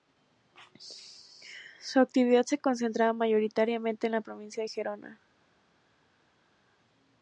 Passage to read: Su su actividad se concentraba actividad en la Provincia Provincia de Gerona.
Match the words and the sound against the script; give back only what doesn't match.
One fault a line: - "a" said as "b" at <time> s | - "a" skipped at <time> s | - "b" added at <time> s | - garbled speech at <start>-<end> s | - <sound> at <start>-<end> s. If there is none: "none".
- "su" skipped at 2.0 s
- "actividad" said as "mayoritariamente" at 3.1 s
- "Provincia" skipped at 4.6 s